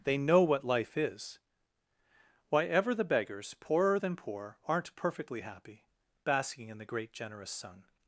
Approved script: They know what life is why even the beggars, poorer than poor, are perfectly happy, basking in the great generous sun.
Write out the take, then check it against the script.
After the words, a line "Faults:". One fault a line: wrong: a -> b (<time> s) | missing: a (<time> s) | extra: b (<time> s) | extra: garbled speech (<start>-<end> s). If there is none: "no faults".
They know what life is why ever the beggars, poorer than poor, aren't perfectly happy, basking in the great generous sun.
Faults:
wrong: even -> ever (2.6 s)
wrong: are -> aren't (4.6 s)